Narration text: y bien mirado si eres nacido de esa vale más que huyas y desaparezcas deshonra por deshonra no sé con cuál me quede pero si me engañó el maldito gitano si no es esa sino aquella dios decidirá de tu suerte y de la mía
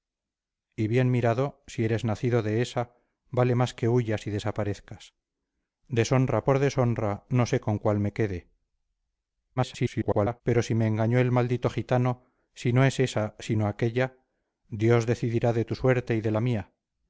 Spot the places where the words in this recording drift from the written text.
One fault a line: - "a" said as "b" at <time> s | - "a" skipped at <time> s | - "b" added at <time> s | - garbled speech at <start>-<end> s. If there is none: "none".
- garbled speech at 9.6-10.4 s